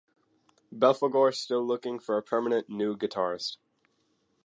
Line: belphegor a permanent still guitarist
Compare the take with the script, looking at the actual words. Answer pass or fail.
fail